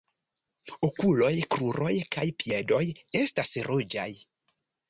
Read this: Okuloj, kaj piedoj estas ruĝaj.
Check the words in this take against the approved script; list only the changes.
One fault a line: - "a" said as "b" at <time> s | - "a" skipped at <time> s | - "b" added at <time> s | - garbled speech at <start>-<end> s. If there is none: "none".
- "kruroj" added at 1.6 s